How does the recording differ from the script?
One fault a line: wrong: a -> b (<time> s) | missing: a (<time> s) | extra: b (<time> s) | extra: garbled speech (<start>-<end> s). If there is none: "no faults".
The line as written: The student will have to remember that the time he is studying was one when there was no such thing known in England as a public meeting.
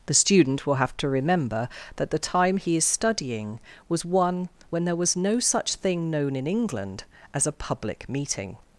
no faults